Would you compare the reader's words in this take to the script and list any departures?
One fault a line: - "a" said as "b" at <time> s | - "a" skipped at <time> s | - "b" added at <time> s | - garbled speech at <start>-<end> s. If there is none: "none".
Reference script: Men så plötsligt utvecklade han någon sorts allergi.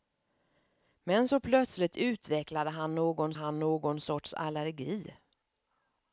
- "han någon" added at 3.3 s